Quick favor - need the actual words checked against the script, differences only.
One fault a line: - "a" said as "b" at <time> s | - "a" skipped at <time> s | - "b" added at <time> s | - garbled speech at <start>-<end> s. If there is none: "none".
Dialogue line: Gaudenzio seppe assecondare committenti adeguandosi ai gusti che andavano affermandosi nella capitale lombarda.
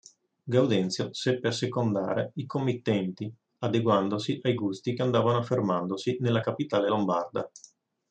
- "i" added at 2.4 s